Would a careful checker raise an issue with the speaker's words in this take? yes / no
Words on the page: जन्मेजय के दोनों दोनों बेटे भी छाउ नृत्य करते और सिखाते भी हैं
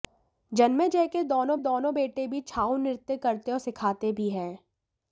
no